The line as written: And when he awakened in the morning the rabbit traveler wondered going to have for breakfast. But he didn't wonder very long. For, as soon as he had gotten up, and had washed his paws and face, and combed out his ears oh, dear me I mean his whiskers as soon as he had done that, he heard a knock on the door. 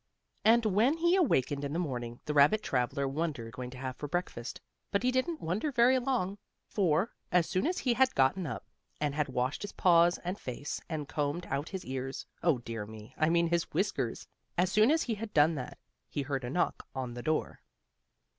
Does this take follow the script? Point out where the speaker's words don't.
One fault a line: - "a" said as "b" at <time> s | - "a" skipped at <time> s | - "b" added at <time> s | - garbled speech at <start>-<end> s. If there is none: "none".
none